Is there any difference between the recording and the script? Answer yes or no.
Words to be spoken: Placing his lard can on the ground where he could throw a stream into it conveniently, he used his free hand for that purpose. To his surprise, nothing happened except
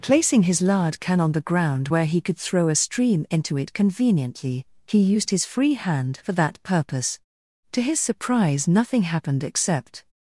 no